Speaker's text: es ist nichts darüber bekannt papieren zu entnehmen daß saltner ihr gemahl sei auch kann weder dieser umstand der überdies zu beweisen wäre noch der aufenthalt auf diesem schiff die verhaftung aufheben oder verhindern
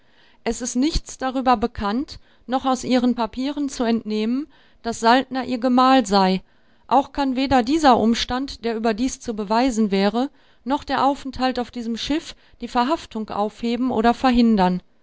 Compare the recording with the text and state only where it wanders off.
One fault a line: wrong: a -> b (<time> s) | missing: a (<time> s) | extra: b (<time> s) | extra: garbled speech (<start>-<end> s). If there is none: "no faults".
extra: noch aus ihren (2.5 s)